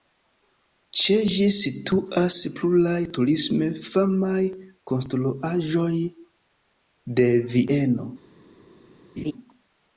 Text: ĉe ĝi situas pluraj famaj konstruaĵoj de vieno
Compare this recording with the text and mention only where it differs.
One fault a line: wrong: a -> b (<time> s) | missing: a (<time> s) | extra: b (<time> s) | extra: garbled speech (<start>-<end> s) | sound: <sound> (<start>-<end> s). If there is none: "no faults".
extra: turisme (3.2 s)
sound: laugh (9.2-9.3 s)